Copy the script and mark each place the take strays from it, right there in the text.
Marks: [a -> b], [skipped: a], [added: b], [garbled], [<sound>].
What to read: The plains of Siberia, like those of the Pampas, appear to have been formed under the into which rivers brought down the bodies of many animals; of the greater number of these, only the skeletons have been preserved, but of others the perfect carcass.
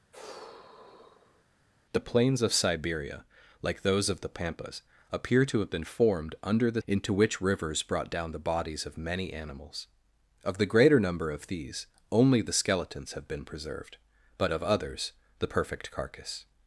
[sigh] The plains of Siberia, like those of the Pampas, appear to have been formed under the into which rivers brought down the bodies of many animals; of the greater number of these, only the skeletons have been preserved, but of others the perfect carcass.